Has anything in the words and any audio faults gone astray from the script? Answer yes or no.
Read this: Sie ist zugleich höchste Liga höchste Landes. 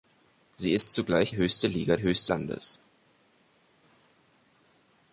no